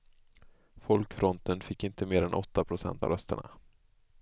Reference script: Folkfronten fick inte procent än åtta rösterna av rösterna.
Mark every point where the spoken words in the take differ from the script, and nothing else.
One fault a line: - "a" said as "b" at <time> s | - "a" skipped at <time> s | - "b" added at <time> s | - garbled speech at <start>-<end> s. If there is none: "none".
- "procent" said as "mer" at 2.0 s
- "rösterna" said as "procent" at 2.6 s